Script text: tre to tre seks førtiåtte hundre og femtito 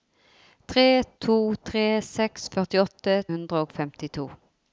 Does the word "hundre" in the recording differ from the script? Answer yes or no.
no